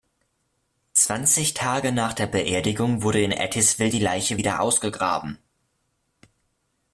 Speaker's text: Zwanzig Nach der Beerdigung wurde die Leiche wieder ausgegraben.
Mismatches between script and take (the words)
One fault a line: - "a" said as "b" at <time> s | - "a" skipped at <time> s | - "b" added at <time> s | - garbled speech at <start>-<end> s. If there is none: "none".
- "Tage" added at 1.5 s
- "in Ettiswil" added at 3.2 s